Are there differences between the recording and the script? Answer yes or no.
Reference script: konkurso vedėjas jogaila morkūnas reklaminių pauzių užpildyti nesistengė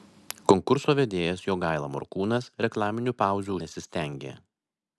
yes